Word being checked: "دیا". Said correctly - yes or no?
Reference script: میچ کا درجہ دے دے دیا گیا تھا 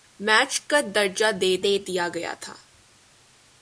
yes